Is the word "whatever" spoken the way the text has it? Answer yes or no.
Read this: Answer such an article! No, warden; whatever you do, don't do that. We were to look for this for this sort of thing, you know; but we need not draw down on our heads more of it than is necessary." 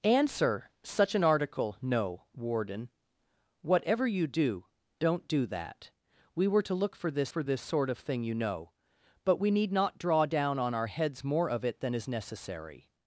yes